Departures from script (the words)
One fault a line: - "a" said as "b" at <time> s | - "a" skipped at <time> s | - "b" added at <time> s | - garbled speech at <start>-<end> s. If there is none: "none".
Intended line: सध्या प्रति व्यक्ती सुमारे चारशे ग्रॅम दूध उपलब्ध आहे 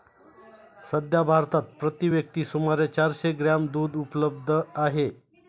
- "भारतात" added at 1.2 s